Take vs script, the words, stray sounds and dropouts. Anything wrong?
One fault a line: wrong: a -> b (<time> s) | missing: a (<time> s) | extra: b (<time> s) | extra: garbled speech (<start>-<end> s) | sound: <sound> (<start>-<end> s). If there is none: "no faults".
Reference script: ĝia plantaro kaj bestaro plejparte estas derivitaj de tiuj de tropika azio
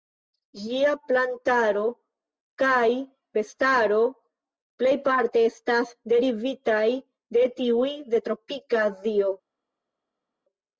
no faults